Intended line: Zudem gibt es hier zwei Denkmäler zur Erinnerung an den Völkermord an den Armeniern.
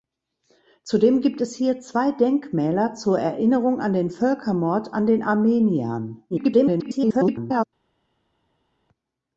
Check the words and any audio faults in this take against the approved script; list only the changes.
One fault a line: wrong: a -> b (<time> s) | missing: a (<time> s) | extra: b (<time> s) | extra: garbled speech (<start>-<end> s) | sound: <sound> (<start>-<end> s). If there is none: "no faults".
extra: garbled speech (6.3-7.7 s)